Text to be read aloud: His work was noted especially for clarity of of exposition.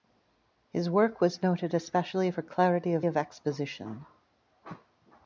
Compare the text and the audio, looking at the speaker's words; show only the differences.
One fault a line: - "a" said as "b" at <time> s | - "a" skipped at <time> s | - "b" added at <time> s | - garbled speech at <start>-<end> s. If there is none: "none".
none